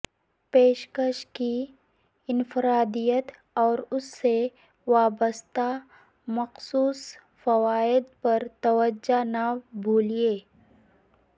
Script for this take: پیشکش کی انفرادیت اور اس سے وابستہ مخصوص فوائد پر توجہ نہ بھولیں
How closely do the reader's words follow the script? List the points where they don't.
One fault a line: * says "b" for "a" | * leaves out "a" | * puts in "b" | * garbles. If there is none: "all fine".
all fine